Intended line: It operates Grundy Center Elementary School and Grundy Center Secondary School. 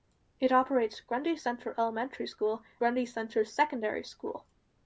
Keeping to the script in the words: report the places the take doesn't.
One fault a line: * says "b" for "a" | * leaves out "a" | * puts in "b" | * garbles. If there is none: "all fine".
* leaves out "and"